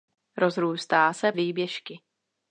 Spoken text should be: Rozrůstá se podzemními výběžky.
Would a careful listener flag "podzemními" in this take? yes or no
yes